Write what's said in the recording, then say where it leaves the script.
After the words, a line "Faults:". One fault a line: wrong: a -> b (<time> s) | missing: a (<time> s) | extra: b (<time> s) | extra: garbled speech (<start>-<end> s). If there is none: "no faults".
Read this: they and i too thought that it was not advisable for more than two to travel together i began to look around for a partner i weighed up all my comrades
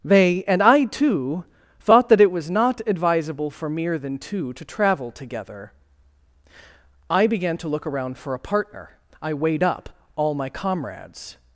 they and i too thought that it was not advisable for mere than two to travel together i began to look around for a partner i weighed up all my comrades
Faults:
wrong: more -> mere (3.7 s)